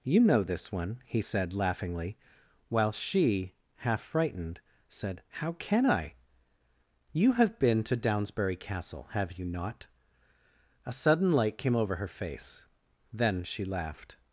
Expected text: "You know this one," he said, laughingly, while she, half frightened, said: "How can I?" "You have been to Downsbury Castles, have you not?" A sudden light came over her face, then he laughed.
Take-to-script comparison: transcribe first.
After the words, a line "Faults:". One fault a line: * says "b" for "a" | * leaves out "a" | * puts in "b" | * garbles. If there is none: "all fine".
"You know this one," he said, laughingly, while she, half frightened, said: "How can I?" "You have been to Downsbury Castle, have you not?" A sudden light came over her face, then she laughed.
Faults:
* says "Castle" for "Castles"
* says "she" for "he"